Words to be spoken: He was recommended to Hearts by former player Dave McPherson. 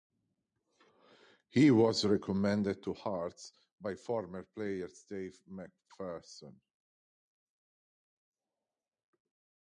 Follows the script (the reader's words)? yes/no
yes